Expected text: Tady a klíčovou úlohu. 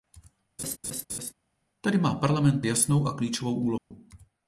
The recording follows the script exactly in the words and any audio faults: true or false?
false